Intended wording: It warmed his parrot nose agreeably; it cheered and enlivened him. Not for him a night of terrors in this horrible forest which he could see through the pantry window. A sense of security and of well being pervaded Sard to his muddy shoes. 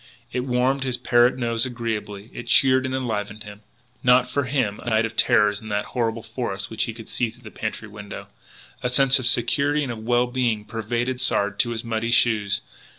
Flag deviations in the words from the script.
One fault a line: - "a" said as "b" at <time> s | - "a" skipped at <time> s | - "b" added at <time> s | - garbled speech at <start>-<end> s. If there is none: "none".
- "this" said as "that" at 5.7 s